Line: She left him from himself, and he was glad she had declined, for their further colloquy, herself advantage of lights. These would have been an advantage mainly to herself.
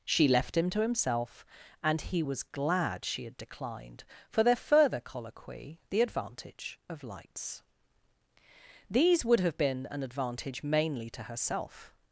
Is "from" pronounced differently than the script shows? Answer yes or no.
yes